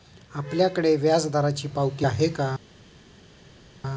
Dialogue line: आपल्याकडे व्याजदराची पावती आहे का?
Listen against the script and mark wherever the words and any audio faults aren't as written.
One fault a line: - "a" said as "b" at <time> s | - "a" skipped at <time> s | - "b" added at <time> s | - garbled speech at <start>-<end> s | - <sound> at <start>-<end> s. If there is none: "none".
none